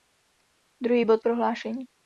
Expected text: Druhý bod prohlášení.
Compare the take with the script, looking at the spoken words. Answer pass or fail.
pass